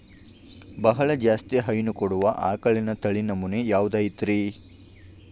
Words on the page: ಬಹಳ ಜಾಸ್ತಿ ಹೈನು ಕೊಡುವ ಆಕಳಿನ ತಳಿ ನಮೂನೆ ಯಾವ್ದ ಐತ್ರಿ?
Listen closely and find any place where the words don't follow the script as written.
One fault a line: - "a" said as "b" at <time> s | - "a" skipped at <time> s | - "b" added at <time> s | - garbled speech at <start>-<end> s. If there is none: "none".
none